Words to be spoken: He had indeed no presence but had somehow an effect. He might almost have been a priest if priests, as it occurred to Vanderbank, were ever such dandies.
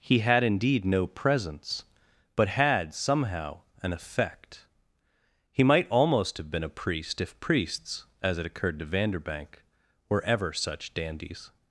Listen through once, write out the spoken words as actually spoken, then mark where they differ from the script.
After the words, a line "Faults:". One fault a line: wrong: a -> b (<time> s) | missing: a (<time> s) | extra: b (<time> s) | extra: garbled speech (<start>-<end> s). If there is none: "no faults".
He had indeed no presence but had somehow an effect. He might almost have been a priest if priests, as it occurred to Vanderbank, were ever such dandies.
Faults:
no faults